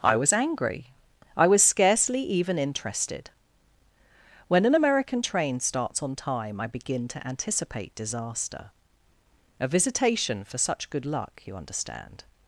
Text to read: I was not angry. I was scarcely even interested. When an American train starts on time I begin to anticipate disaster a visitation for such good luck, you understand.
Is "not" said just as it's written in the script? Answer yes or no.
no